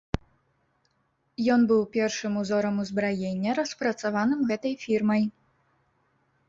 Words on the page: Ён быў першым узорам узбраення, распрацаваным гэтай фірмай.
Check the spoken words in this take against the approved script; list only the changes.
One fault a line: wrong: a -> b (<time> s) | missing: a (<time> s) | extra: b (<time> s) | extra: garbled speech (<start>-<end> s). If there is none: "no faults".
no faults